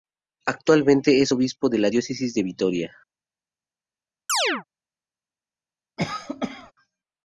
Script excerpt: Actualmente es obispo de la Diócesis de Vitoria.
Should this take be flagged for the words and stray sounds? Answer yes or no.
yes